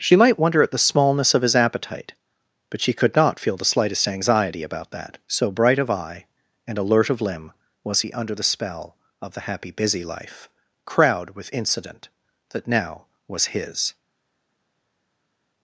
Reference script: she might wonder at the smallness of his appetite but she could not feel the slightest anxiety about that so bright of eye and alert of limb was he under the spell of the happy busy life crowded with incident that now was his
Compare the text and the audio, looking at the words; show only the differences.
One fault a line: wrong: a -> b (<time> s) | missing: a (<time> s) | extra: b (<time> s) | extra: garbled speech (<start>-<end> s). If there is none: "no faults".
wrong: crowded -> crowd (10.8 s)